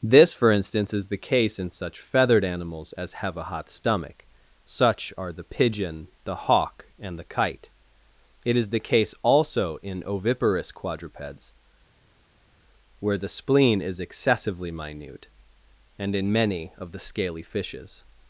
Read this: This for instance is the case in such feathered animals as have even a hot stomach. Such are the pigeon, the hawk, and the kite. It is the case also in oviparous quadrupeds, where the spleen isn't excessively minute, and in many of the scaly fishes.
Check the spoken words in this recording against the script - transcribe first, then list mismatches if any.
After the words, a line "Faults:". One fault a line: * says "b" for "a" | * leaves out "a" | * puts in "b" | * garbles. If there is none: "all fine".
This for instance is the case in such feathered animals as have a hot stomach. Such are the pigeon, the hawk, and the kite. It is the case also in oviparous quadrupeds, where the spleen is excessively minute, and in many of the scaly fishes.
Faults:
* leaves out "even"
* says "is" for "isn't"